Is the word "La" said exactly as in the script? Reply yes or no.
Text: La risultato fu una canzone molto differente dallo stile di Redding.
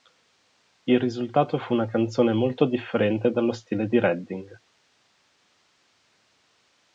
no